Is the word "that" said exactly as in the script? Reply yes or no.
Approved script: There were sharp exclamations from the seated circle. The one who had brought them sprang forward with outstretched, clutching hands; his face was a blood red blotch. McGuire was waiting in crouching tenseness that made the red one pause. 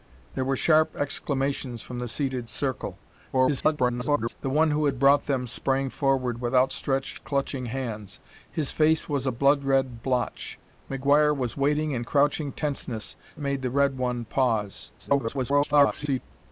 no